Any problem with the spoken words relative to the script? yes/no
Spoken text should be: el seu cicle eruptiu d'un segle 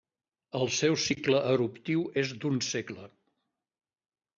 yes